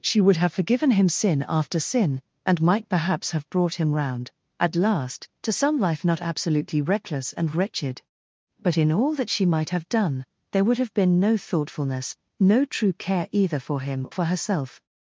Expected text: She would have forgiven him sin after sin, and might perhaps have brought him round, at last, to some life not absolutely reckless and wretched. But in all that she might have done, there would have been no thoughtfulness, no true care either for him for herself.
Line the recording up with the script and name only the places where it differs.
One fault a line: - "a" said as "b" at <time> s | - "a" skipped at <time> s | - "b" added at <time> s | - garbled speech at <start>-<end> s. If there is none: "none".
none